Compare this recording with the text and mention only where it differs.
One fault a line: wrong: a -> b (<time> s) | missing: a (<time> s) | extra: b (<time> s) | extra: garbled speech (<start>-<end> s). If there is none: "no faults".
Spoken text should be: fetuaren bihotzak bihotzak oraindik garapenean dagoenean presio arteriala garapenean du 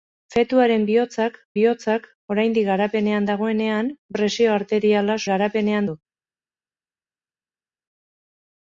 no faults